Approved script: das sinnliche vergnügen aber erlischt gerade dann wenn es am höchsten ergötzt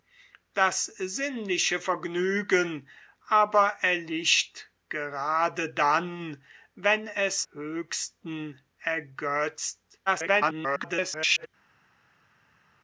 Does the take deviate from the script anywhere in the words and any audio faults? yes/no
yes